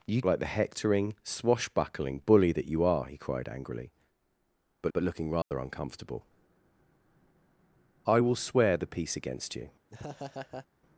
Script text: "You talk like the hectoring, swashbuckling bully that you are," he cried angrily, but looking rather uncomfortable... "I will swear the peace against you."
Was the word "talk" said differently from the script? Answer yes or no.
yes